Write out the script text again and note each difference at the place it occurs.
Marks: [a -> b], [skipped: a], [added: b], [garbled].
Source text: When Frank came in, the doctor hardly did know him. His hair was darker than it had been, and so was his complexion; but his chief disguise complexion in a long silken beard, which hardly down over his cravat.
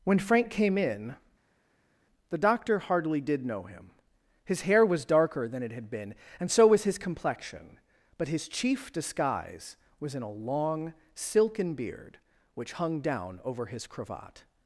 When Frank came in, the doctor hardly did know him. His hair was darker than it had been, and so was his complexion; but his chief disguise [complexion -> was] in a long silken beard, which [hardly -> hung] down over his cravat.